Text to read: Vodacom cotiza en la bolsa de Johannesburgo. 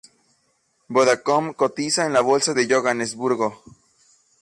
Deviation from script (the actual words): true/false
false